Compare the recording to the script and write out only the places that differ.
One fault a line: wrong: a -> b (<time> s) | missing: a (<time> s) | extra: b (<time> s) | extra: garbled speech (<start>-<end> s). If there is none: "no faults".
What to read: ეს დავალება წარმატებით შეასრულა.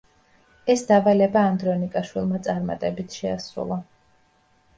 extra: ანდრონიკაშვილმა (1.5 s)